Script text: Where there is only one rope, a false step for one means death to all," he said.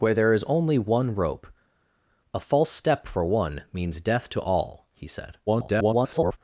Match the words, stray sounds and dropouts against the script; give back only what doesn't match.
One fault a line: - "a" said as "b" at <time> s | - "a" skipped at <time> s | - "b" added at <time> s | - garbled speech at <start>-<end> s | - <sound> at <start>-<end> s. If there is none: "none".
- garbled speech at 5.5-6.4 s